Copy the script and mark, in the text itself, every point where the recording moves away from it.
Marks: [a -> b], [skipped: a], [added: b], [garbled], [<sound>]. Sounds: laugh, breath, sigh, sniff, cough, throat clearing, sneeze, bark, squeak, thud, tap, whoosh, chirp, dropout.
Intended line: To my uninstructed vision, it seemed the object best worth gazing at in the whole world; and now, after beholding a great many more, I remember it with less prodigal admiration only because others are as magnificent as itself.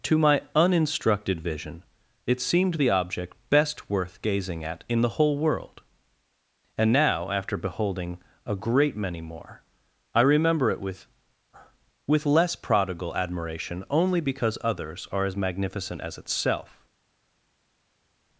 To my uninstructed vision, it seemed the object best worth gazing at in the whole world; and now, after beholding a great many more, I remember it with [added: with] less prodigal admiration only because others are as magnificent as itself.